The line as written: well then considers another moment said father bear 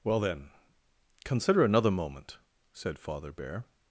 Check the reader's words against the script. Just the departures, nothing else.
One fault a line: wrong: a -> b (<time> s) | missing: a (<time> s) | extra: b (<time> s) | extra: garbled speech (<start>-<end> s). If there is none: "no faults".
wrong: considers -> consider (1.2 s)